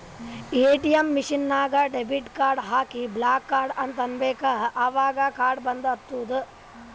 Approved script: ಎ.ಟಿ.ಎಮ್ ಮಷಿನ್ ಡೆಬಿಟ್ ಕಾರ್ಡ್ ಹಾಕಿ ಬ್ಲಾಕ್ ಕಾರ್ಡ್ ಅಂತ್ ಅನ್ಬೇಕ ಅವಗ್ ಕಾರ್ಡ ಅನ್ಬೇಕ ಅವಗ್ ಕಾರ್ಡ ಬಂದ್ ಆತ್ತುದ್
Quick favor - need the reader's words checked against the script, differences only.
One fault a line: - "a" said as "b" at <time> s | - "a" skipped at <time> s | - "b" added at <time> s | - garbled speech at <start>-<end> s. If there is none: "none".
- "ನಾಗ್" added at 1.5 s
- "ಅನ್ಬೇಕ ಅವಗ್ ಕಾರ್ಡ" skipped at 5.7 s